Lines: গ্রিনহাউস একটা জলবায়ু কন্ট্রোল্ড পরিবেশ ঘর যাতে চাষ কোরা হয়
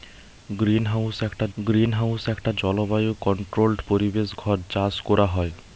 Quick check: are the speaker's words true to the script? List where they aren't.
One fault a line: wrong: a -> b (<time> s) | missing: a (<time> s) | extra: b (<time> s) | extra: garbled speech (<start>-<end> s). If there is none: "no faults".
extra: গ্রিনহাউস একটা (1.6 s)
missing: যাতে (4.6 s)